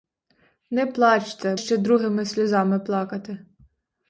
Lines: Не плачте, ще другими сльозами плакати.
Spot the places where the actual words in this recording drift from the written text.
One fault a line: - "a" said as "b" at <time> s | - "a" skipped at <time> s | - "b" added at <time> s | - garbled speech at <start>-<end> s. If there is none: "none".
none